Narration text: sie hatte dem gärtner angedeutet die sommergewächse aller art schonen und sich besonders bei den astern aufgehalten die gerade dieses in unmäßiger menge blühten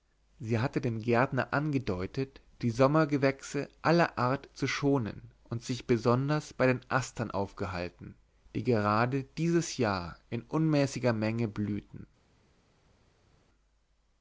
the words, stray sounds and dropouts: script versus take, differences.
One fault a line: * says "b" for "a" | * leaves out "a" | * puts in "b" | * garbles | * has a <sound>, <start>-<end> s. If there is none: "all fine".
* puts in "zu"
* puts in "jahr"